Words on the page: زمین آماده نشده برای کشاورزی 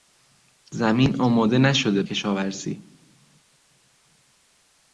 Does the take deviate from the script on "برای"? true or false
true